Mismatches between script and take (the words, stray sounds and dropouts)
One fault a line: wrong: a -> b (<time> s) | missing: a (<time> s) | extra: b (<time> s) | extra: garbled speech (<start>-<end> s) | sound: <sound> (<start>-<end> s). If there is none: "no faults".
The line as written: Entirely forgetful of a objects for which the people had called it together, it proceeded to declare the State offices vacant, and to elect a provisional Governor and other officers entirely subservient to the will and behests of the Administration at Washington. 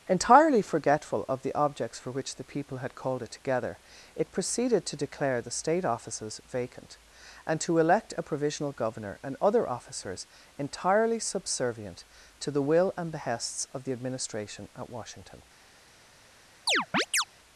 wrong: a -> the (1.4 s)
sound: chirp (16.7-17.2 s)